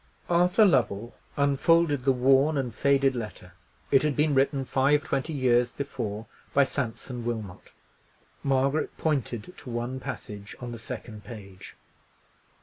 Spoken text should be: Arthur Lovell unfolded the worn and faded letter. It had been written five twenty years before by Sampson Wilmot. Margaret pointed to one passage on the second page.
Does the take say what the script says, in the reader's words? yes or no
yes